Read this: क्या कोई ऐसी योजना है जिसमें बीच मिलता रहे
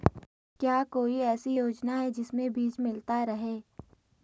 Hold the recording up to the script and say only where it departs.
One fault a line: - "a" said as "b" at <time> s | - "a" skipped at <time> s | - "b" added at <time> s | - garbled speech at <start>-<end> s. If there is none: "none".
none